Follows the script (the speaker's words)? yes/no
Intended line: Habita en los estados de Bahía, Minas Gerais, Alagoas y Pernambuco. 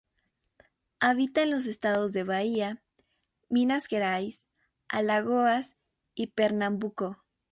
yes